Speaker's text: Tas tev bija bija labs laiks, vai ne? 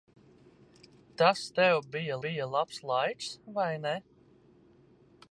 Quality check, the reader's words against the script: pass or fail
pass